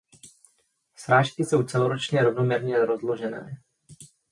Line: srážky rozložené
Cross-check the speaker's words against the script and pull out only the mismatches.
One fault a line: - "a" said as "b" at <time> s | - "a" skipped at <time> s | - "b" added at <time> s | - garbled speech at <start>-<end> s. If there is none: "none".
- "jsou celoročně rovnoměrně" added at 1.4 s